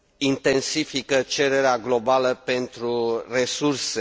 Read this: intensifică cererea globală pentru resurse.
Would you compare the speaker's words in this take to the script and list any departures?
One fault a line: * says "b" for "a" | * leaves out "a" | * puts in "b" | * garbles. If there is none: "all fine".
all fine